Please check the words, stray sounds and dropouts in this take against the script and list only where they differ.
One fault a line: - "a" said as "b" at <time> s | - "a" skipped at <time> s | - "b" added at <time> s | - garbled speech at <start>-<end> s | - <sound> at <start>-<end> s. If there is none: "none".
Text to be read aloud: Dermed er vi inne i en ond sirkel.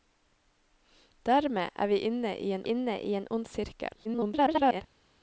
- "inne i en" added at 2.6 s
- garbled speech at 4.0-4.8 s